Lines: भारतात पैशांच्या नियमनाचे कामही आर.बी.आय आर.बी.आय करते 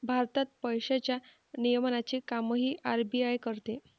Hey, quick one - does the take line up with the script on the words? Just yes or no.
no